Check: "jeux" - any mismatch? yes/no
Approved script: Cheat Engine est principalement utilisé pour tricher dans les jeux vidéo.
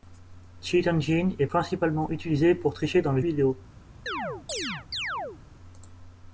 yes